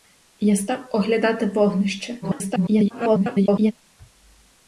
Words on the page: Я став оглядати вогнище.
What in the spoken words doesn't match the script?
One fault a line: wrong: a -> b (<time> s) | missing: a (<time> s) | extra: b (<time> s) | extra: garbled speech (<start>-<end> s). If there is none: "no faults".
extra: garbled speech (2.2-3.7 s)